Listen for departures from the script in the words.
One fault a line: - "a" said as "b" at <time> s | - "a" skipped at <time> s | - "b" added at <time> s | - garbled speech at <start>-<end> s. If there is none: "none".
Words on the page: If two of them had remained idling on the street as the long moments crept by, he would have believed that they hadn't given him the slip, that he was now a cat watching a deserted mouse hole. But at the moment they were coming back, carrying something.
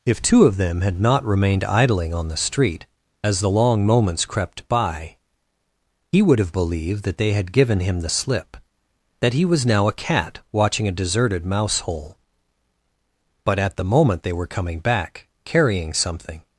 - "not" added at 1.0 s
- "hadn't" said as "had" at 7.3 s